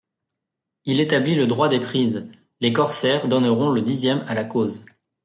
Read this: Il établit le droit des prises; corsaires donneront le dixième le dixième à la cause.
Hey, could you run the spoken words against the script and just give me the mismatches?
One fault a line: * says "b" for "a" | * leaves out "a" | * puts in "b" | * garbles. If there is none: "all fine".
* puts in "les"
* leaves out "le dixième"